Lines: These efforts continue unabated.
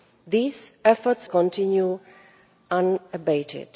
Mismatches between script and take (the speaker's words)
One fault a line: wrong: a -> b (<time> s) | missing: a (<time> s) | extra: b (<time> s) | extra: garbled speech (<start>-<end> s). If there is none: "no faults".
no faults